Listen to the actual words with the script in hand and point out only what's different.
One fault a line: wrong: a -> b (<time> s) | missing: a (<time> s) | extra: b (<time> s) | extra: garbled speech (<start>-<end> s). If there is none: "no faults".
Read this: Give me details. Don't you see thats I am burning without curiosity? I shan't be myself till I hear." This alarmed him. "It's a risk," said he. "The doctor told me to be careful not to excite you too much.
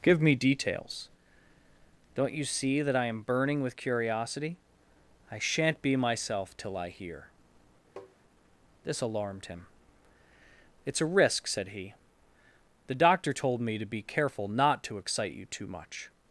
wrong: thats -> that (2.8 s)
wrong: without -> with (3.6 s)